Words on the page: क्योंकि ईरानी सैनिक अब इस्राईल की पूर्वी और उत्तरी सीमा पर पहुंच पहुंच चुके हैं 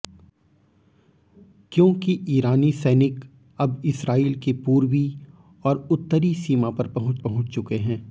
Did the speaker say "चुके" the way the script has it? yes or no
yes